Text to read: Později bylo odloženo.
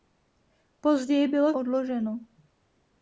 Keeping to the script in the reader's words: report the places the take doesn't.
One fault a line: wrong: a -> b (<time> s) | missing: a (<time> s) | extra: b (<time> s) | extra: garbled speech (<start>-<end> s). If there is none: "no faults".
no faults